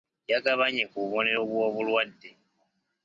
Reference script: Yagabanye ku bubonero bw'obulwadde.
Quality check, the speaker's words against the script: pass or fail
pass